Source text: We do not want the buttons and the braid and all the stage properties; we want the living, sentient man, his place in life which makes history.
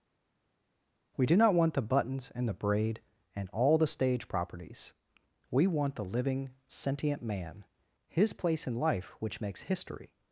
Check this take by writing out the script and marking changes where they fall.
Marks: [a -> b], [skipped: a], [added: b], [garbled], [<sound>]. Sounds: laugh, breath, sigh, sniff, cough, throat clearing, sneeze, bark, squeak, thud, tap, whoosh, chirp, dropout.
We do not want the buttons and the braid and all the stage properties; we want the living, sentient man, his place in life which makes history.